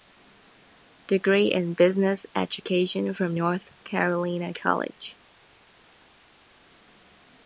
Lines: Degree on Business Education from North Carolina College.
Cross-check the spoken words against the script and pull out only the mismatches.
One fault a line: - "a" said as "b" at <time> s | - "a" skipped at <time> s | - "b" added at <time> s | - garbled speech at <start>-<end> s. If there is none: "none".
- "on" said as "in" at 1.5 s